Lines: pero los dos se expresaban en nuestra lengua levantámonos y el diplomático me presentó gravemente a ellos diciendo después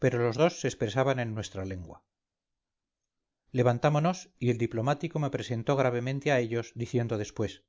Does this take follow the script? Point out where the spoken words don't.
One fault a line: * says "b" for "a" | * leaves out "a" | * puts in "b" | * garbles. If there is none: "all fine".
all fine